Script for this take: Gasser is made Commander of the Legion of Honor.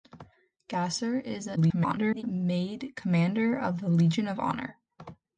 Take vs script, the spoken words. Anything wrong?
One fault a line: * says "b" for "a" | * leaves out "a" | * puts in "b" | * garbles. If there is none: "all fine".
* garbles